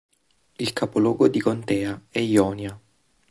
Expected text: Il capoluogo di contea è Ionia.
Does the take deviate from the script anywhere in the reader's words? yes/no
no